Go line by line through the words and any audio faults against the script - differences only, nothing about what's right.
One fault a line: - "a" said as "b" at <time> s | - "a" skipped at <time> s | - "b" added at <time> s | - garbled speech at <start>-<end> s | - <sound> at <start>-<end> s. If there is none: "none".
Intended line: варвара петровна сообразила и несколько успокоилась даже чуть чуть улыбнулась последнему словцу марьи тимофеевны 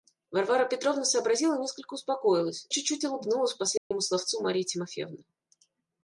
- "даже" skipped at 2.7 s
- dropout at 3.8-3.9 s